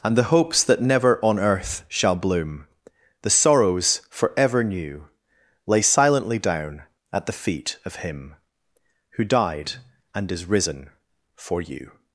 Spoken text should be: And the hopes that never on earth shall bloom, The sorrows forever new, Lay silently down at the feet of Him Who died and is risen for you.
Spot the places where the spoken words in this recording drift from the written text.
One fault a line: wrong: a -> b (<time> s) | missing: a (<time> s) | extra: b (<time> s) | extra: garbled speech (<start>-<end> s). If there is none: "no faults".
no faults